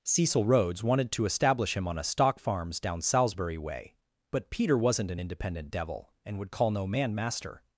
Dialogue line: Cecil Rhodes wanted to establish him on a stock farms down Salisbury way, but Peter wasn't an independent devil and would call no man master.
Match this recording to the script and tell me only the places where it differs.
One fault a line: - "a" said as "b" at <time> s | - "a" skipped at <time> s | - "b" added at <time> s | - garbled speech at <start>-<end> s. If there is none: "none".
none